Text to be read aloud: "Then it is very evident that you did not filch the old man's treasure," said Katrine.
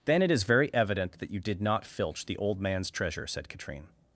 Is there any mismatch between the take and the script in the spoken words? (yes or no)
no